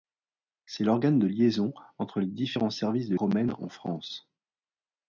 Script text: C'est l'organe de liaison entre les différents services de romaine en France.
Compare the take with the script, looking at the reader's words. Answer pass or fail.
pass